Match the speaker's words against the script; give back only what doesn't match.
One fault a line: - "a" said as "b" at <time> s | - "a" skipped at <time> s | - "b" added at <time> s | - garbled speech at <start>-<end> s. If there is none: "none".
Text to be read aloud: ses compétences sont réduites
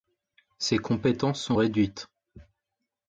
none